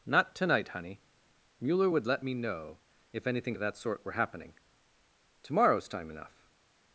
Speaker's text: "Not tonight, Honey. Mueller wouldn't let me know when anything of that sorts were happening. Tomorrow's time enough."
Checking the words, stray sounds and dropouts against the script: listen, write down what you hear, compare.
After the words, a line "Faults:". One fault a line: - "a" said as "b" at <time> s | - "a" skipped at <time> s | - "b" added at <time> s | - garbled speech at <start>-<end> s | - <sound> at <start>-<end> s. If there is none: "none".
"Not tonight, Honey. Mueller would let me know if anything of that sort were happening. Tomorrow's time enough."
Faults:
- "wouldn't" said as "would" at 1.9 s
- "when" said as "if" at 3.1 s
- "sorts" said as "sort" at 3.8 s